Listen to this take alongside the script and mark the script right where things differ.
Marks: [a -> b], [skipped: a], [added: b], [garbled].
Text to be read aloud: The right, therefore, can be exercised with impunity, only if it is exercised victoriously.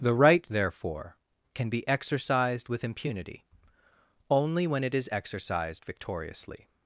The right, therefore, can be exercised with impunity, only [if -> when] it is exercised victoriously.